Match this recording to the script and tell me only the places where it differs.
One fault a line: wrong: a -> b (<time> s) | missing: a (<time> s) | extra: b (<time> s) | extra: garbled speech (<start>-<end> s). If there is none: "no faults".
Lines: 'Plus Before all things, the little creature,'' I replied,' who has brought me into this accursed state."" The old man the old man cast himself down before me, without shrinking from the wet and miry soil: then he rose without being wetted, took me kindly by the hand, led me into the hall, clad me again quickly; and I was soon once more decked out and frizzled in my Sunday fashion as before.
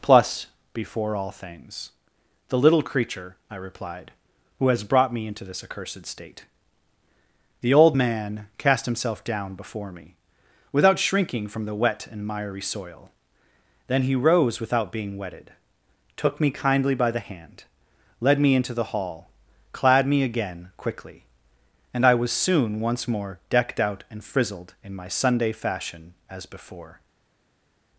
missing: the old man (8.5 s)